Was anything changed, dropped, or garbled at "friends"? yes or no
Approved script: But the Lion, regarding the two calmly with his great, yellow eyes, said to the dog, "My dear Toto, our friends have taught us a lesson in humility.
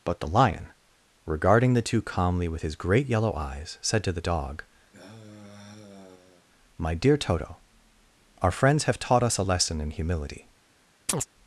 no